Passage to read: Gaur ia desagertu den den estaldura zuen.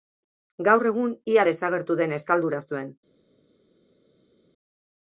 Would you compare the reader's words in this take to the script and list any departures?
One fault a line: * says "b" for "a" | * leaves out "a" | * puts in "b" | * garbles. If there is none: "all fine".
* puts in "egun"
* leaves out "den"